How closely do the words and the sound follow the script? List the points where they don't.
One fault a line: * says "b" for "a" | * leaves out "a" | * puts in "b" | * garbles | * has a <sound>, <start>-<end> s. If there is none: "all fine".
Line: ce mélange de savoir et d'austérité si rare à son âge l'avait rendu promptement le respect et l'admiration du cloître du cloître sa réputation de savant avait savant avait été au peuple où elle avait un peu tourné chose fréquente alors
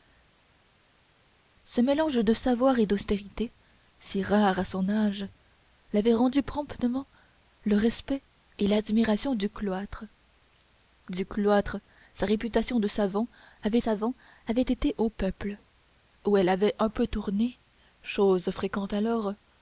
all fine